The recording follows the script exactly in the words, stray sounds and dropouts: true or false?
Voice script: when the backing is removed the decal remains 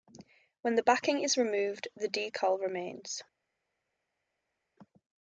true